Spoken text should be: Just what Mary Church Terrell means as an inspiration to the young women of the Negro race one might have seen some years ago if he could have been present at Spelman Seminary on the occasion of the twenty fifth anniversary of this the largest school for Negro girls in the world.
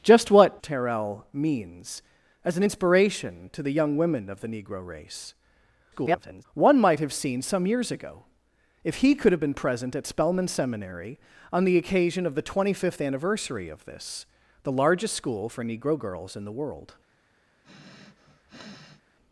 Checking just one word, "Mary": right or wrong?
wrong